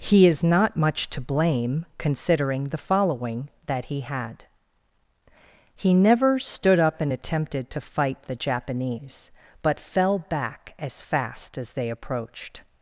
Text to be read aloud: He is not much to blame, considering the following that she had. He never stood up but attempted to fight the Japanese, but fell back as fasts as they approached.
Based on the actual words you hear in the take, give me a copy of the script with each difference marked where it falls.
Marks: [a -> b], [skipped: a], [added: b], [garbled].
He is not much to blame, considering the following that [she -> he] had. He never stood up [but -> and] attempted to fight the Japanese, but fell back as [fasts -> fast] as they approached.